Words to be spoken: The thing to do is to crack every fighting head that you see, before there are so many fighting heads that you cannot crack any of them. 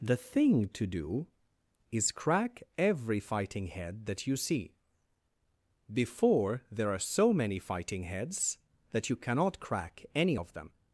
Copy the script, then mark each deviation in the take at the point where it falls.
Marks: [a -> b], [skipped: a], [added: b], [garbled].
The thing to do is [skipped: to] crack every fighting head that you see, before there are so many fighting heads that you cannot crack any of them.